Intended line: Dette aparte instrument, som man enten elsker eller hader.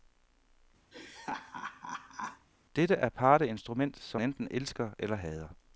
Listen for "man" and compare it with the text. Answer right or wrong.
wrong